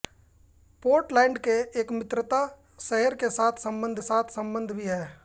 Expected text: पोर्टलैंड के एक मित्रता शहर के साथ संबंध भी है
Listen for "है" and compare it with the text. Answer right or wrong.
right